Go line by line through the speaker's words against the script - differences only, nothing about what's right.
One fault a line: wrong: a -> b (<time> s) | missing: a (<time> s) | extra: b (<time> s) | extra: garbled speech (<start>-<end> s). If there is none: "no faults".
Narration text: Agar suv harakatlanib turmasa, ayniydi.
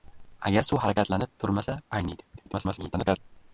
extra: garbled speech (2.4-3.2 s)